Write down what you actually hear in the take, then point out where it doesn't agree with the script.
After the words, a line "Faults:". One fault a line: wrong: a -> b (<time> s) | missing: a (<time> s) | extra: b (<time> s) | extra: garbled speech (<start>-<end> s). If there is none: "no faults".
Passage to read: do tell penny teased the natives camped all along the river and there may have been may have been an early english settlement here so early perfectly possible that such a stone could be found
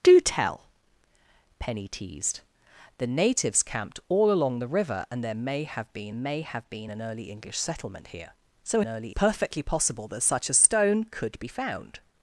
do tell penny teased the natives camped all along the river and there may have been may have been an early english settlement here so early perfectly possible that such a stone could be found
Faults:
no faults